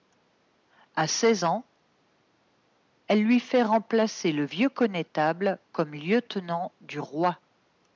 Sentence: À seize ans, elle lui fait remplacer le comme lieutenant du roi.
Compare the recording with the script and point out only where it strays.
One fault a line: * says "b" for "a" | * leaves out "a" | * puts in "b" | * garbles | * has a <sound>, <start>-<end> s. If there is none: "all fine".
* puts in "vieux connétable"